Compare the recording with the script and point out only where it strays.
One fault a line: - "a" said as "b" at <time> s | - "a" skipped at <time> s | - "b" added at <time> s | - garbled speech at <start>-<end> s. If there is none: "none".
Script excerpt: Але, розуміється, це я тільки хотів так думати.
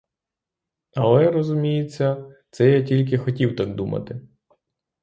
none